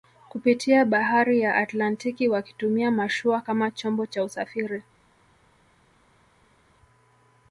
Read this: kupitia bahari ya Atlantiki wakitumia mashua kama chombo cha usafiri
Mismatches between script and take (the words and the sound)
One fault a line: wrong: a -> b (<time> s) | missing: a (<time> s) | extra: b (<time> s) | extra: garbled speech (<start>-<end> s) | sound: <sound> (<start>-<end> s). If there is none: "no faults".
no faults